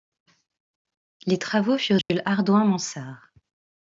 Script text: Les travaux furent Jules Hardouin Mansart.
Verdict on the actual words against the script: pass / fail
pass